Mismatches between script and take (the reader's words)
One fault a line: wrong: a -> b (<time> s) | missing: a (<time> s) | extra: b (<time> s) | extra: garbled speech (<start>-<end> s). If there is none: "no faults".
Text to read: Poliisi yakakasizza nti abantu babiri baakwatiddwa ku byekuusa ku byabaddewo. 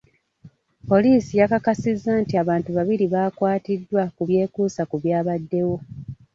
no faults